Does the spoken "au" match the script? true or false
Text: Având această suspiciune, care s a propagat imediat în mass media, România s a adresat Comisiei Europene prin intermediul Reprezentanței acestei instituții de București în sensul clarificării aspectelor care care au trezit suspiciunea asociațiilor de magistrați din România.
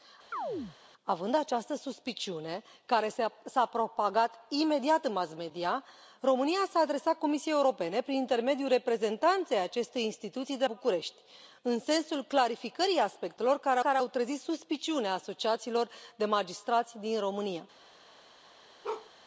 true